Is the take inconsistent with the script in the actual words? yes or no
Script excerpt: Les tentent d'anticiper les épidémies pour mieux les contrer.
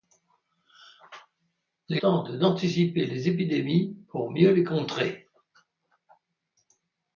no